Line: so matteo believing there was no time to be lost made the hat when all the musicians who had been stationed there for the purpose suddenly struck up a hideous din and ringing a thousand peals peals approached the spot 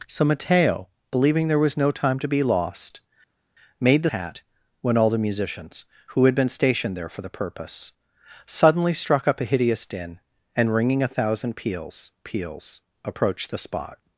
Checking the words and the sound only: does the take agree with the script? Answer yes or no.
yes